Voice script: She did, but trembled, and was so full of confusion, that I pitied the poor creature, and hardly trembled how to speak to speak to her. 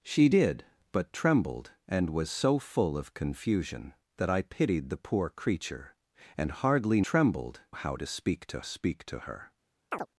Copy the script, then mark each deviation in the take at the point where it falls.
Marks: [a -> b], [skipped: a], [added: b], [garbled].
She did, but trembled, and was so full of confusion, that I pitied the poor creature, and hardly trembled how to speak to speak to her.